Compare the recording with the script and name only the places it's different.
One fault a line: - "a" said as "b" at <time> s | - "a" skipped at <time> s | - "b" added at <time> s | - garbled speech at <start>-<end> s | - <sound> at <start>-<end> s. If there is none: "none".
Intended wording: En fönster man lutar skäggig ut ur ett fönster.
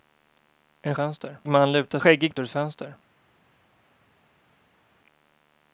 none